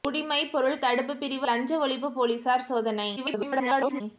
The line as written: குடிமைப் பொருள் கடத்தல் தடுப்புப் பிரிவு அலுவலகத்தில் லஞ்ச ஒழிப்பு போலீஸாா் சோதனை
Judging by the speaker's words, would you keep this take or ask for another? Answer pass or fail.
fail